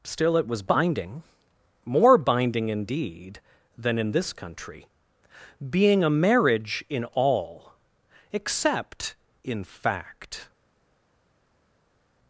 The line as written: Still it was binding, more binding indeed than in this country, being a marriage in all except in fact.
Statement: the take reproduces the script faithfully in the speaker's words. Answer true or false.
true